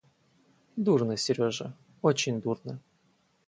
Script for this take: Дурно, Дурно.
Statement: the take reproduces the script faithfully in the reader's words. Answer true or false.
false